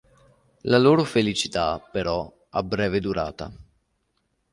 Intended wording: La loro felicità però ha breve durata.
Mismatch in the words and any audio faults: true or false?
false